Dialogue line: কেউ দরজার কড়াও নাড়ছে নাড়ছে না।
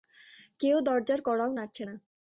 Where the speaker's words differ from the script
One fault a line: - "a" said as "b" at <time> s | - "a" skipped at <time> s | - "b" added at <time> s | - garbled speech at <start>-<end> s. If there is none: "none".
- "নাড়ছে" skipped at 1.8 s